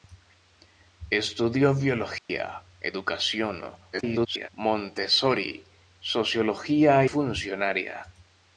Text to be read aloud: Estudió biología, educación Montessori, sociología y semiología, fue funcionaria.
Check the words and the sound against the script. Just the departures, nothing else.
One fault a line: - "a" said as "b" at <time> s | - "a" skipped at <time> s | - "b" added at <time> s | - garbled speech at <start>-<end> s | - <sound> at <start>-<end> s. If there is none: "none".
- dropout at 2.2-2.3 s
- garbled speech at 3.9-4.5 s
- "y semiología fue" skipped at 7.0 s